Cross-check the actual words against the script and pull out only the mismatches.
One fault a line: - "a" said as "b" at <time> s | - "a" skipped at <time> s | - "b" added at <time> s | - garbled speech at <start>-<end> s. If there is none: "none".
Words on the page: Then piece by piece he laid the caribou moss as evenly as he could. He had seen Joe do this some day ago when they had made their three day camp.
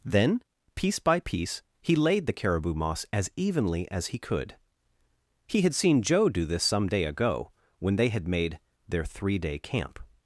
none